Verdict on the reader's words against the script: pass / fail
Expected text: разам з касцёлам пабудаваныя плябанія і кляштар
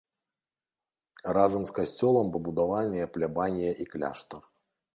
pass